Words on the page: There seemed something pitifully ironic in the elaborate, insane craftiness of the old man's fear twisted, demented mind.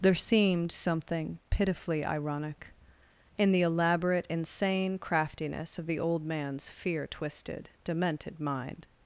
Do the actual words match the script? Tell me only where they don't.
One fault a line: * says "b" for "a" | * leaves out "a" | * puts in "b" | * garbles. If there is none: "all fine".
all fine